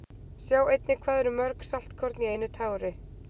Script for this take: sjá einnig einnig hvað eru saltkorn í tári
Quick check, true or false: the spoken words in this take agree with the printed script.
false